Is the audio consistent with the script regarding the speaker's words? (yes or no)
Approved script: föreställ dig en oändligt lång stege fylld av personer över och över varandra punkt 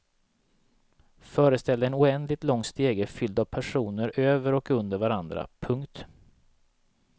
no